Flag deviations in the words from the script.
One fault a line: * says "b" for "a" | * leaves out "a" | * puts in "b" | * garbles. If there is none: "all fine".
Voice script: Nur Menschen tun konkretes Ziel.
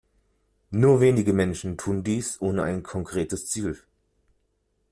* puts in "wenige"
* puts in "dies ohne ein"